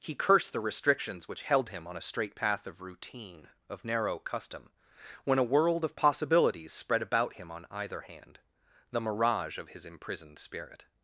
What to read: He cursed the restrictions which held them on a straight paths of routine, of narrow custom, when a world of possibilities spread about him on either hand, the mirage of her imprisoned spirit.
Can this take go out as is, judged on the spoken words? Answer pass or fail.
fail